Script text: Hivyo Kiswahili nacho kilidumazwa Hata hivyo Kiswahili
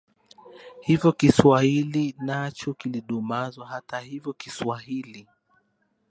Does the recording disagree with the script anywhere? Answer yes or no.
no